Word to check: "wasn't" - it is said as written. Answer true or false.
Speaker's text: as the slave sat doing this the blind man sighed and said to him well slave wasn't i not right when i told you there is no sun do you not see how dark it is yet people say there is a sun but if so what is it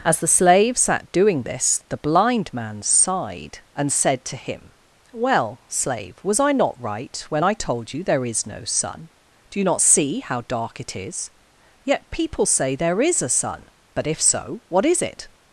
false